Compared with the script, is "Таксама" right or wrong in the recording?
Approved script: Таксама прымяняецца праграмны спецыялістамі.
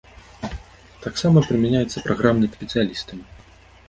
right